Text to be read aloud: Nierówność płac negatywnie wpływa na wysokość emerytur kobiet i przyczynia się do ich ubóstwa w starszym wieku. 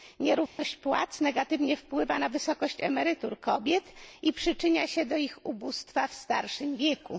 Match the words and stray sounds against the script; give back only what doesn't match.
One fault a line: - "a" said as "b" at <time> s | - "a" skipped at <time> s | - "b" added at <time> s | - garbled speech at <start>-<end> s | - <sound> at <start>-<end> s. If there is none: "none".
- dropout at 0.5-0.6 s